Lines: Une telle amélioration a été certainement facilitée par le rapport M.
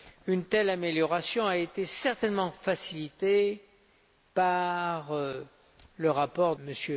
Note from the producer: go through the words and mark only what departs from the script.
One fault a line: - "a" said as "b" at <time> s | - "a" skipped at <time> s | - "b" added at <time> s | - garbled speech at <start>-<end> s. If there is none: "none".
none